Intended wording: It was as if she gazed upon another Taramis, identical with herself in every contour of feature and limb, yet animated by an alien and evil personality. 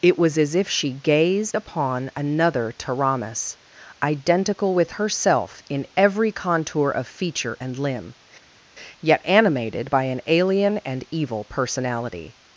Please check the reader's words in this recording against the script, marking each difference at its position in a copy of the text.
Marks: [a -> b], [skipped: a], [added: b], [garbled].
It was as if she gazed upon another Taramis, identical with herself in every contour of feature and limb, yet animated by an alien and evil personality.